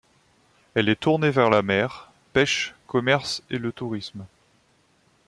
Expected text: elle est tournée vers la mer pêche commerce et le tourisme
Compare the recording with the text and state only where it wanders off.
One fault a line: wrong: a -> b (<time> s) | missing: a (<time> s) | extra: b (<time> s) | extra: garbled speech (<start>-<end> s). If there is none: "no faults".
no faults